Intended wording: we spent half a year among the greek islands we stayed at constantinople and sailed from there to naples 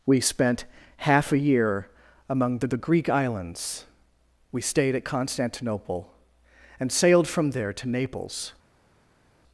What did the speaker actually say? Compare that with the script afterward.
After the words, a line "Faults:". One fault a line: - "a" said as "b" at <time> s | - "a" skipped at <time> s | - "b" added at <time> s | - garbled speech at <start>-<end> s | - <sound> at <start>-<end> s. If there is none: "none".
we spent half a year among the the greek islands we stayed at constantinople and sailed from there to naples
Faults:
- "the" added at 2.7 s